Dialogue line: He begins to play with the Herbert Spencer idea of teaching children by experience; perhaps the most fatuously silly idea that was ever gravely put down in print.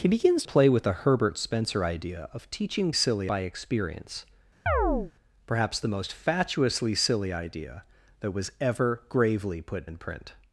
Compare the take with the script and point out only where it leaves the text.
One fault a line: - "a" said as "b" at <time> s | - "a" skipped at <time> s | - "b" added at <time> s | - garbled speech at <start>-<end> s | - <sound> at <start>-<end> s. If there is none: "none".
- "to" skipped at 0.4 s
- "children" said as "silly" at 2.9 s
- chirp at 4.7-5.1 s
- "down" skipped at 9.9 s